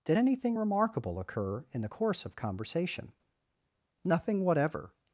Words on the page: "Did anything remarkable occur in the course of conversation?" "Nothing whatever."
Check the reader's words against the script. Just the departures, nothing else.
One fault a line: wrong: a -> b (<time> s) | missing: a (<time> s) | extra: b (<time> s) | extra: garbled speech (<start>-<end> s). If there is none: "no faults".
no faults